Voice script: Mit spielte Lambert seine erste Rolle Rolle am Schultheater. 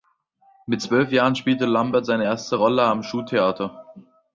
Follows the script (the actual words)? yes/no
no